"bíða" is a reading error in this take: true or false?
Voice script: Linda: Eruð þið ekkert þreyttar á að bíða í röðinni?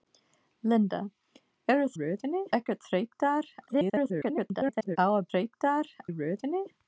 true